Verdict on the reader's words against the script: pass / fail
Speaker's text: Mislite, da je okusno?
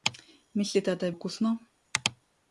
pass